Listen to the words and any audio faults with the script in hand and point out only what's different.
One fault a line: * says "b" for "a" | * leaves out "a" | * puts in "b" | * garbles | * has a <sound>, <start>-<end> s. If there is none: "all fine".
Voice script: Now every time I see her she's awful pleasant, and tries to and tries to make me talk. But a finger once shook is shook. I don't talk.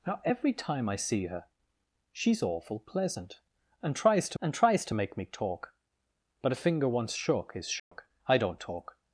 * has a dropout, 7.8-7.9 s